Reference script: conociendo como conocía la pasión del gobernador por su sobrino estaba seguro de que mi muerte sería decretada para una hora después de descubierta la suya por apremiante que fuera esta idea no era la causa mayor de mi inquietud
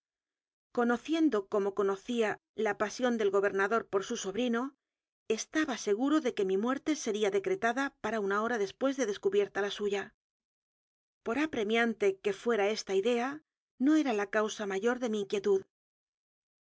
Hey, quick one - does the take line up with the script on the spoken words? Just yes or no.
yes